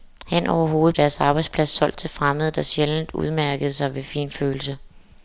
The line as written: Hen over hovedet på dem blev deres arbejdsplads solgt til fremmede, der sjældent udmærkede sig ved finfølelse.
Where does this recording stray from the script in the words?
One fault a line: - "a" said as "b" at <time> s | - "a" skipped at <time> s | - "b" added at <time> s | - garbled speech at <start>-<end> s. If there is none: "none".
- "på dem blev" skipped at 1.0 s